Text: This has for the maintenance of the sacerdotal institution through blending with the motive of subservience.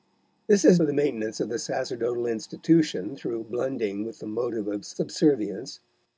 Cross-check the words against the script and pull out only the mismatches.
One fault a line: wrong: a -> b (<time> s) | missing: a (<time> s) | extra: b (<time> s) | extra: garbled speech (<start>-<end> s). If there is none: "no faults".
no faults